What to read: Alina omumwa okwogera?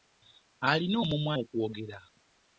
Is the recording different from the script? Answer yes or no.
no